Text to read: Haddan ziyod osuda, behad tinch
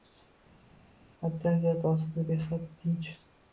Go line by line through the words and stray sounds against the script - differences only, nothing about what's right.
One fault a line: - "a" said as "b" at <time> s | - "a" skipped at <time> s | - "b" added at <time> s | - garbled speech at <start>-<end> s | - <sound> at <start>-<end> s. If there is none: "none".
none